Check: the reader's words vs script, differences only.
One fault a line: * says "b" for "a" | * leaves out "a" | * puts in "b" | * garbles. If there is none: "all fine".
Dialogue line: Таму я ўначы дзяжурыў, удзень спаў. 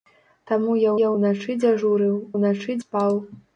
* puts in "я"
* says "ўначы" for "удзень"